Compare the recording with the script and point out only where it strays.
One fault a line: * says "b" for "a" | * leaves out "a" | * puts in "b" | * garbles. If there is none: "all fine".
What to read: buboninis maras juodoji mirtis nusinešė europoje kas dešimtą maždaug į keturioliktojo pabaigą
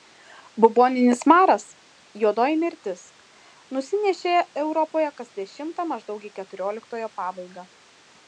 all fine